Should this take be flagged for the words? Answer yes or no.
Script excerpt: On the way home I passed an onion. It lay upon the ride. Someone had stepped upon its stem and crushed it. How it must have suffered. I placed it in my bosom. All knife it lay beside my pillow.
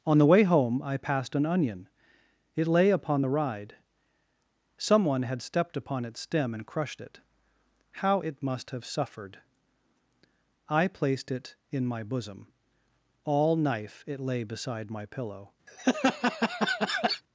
no